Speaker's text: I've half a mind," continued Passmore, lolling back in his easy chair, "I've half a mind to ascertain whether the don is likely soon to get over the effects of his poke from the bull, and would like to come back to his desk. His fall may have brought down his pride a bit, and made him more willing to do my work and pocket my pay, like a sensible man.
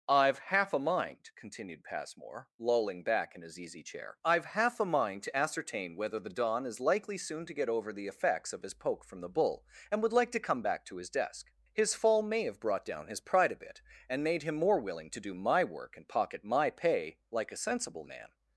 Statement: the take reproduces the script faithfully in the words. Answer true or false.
true